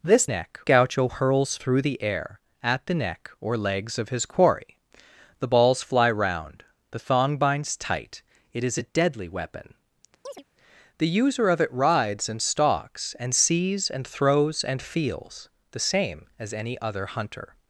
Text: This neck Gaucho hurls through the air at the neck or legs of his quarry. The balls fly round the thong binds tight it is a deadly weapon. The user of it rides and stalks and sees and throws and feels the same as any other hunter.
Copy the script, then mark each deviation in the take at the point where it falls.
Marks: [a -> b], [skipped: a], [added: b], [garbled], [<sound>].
This neck Gaucho hurls through the air at the neck or legs of his quarry. The balls fly round the thong binds tight it is a deadly weapon. [chirp] The user of it rides and stalks and sees and throws and feels the same as any other hunter.